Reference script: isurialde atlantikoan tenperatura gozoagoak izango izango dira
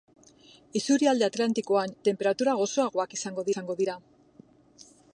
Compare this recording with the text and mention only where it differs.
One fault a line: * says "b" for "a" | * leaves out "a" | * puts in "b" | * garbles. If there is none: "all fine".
all fine